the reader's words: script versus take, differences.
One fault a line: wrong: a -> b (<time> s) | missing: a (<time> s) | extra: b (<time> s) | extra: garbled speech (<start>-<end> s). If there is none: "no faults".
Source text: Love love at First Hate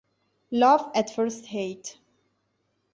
missing: love (0.9 s)